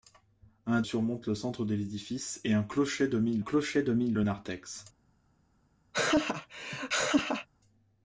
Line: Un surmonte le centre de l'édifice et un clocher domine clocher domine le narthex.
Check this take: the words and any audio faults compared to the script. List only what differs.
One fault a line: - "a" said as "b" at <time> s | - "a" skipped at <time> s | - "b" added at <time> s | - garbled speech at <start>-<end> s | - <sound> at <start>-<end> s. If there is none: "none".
- laugh at 5.9-7.5 s